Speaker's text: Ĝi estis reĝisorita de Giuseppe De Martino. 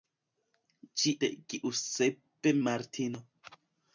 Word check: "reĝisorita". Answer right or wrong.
wrong